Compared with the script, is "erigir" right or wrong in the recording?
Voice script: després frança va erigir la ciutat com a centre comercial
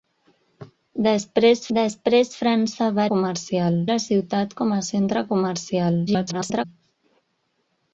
wrong